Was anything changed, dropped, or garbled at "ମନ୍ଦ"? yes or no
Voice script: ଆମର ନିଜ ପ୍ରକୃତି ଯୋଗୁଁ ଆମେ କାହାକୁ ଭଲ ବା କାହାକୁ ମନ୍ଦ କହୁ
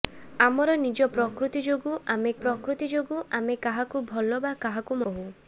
yes